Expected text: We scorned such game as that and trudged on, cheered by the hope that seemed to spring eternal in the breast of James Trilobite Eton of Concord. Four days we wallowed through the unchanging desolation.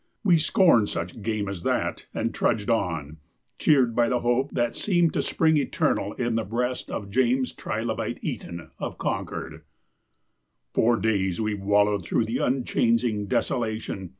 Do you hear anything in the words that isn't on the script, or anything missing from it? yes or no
no